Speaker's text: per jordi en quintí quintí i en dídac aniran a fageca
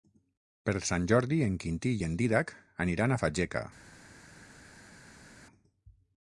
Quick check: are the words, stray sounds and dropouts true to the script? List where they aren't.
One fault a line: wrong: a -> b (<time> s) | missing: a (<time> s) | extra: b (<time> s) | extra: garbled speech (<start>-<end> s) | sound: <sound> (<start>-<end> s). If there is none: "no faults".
extra: sant (0.8 s)
missing: quintí (1.9 s)